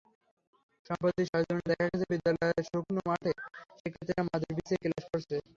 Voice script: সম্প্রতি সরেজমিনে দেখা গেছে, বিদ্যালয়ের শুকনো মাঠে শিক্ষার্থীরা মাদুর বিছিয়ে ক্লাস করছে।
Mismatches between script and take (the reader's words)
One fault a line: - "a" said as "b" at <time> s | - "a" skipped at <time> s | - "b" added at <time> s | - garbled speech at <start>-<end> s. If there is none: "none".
none